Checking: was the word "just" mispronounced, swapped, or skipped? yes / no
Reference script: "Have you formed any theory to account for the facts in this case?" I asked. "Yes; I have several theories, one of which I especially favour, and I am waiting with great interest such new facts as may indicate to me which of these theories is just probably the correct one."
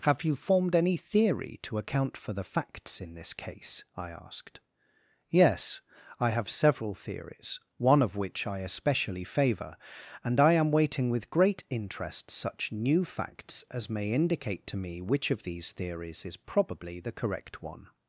yes